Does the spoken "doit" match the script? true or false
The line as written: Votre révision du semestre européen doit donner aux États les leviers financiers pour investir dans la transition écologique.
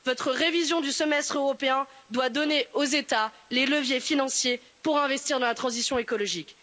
true